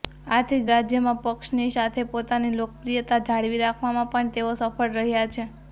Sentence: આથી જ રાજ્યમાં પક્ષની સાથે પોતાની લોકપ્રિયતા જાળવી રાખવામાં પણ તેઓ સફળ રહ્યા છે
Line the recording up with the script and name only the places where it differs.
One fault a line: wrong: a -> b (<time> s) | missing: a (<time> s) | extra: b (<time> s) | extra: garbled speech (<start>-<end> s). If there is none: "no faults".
no faults